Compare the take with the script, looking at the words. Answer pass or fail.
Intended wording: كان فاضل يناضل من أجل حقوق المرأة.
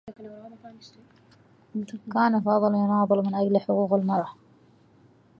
pass